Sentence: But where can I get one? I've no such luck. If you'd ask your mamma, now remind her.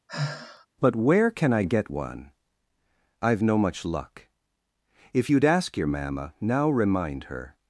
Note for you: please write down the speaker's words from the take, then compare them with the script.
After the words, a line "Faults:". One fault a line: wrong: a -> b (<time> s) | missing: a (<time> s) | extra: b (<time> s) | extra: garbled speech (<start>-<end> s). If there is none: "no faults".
But where can I get one? I've no much luck. If you'd ask your mamma, now remind her.
Faults:
wrong: such -> much (3.6 s)